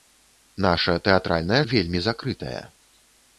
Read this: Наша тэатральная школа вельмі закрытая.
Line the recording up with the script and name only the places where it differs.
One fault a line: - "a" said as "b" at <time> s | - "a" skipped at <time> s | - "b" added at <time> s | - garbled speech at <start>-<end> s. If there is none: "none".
- "школа" skipped at 1.6 s